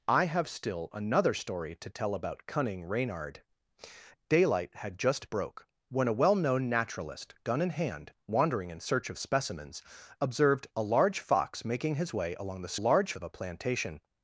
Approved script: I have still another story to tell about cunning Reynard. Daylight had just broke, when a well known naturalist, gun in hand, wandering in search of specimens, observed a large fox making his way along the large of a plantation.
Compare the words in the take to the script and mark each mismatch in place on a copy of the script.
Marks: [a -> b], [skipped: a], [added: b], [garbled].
I have still another story to tell about cunning Reynard. Daylight had just broke, when a well known naturalist, gun in hand, wandering in search of specimens, observed a large fox making his way along the large of a plantation.